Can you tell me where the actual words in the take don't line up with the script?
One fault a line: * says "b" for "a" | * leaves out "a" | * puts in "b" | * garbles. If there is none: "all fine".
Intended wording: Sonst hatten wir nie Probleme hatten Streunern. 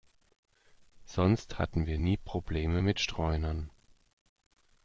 * says "mit" for "hatten"